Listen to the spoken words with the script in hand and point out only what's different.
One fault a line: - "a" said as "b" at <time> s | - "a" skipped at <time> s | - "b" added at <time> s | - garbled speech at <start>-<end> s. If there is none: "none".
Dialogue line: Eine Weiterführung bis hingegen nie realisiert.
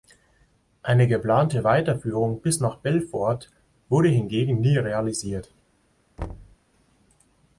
- "geplante" added at 1.1 s
- "nach Belfort wurde" added at 2.6 s